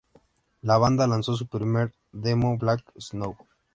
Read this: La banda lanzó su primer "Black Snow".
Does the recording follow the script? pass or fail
fail